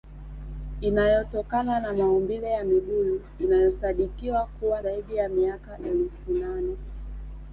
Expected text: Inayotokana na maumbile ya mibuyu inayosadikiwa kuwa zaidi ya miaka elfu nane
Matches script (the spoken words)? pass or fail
pass